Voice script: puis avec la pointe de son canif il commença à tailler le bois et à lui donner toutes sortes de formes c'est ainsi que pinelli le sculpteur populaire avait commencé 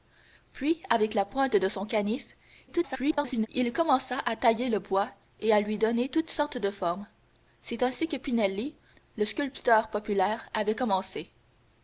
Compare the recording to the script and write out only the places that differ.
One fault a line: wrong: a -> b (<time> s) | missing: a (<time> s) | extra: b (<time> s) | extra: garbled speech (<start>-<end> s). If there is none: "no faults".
extra: garbled speech (2.7-3.5 s)